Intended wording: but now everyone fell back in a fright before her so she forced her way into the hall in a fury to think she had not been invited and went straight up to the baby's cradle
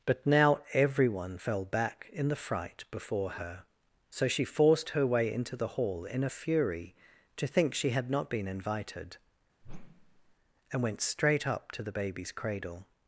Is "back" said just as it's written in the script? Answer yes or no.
yes